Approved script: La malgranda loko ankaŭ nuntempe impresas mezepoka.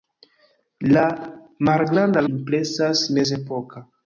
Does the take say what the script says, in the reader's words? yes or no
no